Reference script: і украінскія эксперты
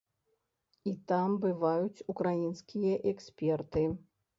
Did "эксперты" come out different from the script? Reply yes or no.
no